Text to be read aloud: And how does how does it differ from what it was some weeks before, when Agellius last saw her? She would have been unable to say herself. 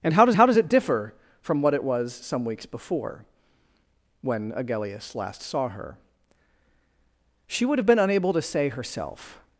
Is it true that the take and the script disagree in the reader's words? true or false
false